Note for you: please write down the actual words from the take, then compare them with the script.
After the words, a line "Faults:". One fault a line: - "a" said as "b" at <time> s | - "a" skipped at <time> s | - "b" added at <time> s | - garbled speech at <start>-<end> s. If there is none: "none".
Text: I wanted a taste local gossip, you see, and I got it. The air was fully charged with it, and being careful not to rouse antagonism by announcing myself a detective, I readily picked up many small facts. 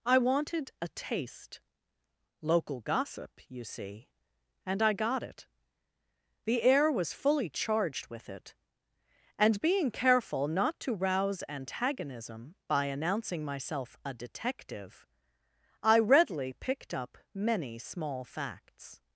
I wanted a taste local gossip, you see, and I got it. The air was fully charged with it, and being careful not to rouse antagonism by announcing myself a detective, I readily picked up many small facts.
Faults:
none